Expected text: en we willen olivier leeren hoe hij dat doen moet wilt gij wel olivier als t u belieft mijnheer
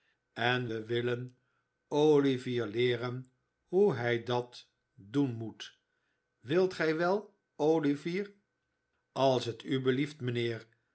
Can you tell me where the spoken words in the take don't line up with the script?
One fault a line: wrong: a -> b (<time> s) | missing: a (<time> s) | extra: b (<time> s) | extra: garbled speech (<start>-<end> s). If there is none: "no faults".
no faults